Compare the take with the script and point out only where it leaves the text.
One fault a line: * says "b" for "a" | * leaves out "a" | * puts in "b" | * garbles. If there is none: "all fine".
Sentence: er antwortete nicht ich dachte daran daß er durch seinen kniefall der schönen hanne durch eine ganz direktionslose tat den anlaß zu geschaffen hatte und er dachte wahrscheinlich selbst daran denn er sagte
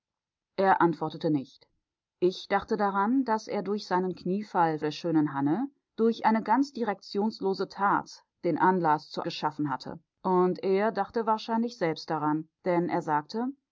all fine